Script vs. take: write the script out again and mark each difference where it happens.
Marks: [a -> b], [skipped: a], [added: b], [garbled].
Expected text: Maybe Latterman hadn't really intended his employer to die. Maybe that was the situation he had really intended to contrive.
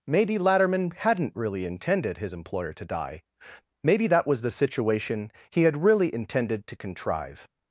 Maybe Latterman hadn't really intended his employer to die. Maybe that was the situation he had really intended to contrive.